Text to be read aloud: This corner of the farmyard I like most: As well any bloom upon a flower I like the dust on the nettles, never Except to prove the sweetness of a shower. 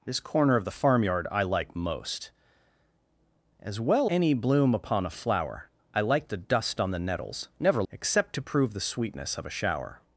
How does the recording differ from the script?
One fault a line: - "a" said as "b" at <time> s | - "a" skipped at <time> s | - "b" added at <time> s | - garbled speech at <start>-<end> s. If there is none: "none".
none